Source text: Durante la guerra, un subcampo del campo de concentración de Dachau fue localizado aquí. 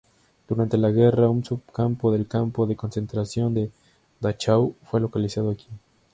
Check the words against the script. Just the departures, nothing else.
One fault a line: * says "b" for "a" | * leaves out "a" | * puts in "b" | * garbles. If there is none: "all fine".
all fine